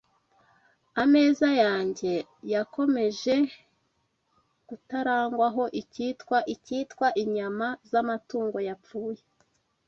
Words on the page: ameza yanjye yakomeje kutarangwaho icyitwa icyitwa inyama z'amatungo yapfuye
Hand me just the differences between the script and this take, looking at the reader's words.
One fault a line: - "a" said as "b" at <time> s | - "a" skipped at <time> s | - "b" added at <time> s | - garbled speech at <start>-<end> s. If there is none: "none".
none